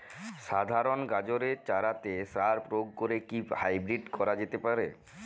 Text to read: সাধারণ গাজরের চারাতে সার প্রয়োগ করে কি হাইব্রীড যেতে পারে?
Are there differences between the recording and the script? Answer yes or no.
yes